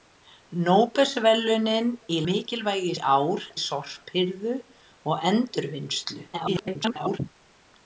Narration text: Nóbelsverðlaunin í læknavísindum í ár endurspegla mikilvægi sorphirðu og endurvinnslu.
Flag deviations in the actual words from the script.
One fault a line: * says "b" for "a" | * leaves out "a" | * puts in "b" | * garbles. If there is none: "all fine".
* says "mikilvægi" for "læknavísindum"
* leaves out "endurspegla mikilvægi"
* garbles